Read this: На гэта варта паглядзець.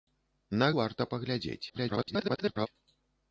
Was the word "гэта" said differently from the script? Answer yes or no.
yes